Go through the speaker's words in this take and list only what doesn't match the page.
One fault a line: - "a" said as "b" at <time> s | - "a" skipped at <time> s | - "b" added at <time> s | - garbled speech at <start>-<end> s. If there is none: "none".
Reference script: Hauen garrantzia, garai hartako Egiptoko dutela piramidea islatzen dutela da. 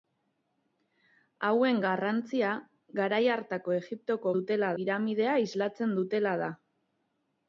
none